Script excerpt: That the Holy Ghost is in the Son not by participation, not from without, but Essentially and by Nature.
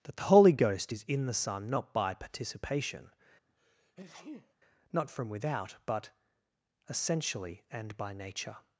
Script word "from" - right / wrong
right